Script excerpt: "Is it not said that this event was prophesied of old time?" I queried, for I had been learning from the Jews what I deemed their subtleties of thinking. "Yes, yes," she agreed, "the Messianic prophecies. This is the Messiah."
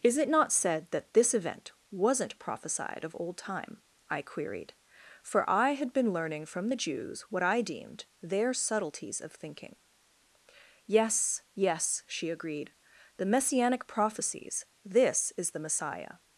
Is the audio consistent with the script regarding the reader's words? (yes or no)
no